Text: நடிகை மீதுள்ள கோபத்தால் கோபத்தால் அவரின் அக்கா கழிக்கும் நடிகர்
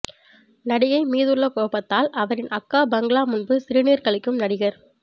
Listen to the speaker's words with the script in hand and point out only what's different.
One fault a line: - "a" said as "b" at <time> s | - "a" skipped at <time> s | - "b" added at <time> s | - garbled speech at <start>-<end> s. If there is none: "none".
- "கோபத்தால்" skipped at 2.1 s
- "பங்களா முன்பு சிறுநீர்" added at 2.9 s